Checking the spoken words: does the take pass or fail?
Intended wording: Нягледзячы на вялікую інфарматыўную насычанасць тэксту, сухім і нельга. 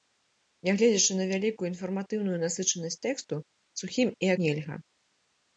pass